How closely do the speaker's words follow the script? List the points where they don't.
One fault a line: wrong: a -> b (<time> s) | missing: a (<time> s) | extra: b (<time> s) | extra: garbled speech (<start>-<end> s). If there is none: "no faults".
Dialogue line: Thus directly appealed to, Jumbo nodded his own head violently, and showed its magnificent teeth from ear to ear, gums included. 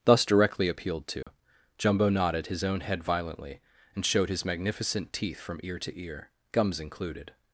wrong: its -> his (4.3 s)